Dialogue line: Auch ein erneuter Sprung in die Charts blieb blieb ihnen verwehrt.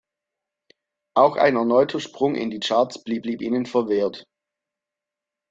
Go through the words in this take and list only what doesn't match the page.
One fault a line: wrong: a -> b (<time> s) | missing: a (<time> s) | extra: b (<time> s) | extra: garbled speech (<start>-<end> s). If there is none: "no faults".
no faults